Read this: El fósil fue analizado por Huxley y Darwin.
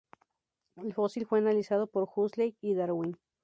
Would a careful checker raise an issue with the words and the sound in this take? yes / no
no